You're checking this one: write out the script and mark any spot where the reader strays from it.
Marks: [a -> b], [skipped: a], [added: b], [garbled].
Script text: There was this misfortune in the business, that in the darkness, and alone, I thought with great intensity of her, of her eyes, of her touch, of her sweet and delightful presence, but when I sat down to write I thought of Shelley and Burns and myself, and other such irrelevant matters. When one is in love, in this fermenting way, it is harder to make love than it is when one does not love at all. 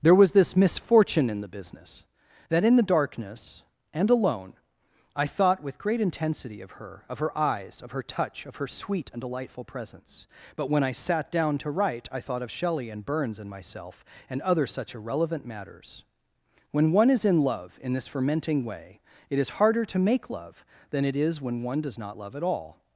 There was this misfortune in the business, that in the darkness, and alone, I thought with great intensity of her, of her eyes, of her touch, of her sweet and delightful presence, but when I sat down to write I thought of Shelley and Burns and myself, and other such irrelevant matters. When one is in love, in this fermenting way, it is harder to make love than it is when one does not love at all.